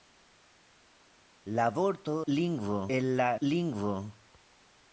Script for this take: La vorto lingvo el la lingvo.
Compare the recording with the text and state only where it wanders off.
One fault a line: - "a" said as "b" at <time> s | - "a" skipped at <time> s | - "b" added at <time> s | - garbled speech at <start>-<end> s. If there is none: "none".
none